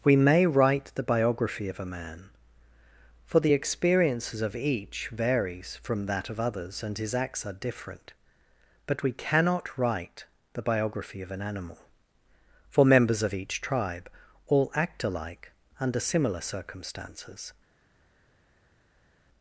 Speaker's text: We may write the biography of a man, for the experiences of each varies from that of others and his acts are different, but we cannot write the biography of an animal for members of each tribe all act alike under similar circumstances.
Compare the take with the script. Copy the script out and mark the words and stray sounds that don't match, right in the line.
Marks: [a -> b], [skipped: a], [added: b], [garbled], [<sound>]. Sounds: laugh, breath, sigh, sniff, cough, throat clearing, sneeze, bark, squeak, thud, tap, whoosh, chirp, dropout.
We may write the biography of a man, for the experiences of each varies from that of others and his acts are different, but we cannot write the biography of an animal for members of each tribe all act alike under similar circumstances.